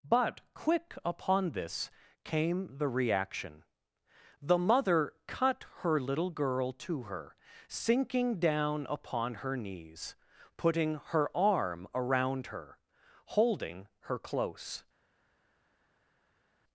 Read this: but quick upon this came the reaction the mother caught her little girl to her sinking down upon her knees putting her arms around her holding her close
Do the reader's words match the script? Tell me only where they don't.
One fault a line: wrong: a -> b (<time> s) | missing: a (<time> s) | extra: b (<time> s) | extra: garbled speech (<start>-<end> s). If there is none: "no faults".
wrong: caught -> cut (5.3 s)
wrong: arms -> arm (11.4 s)